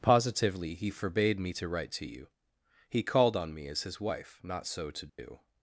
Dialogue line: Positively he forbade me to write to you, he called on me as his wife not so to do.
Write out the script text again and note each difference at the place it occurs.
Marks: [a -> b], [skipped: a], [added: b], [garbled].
Positively he forbade me to write to you, he called on me as his wife not so to do.